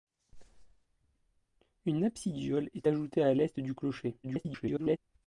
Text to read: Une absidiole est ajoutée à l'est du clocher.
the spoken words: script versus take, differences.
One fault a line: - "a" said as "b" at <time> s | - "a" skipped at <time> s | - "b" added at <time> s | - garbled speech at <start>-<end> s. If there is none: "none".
- garbled speech at 4.2-5.0 s